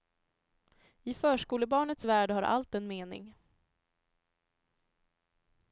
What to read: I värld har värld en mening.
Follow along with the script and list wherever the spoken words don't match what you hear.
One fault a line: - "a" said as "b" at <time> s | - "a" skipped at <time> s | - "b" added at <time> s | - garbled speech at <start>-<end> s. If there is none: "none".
- "förskolebarnets" added at 1.1 s
- "värld" said as "allt" at 2.4 s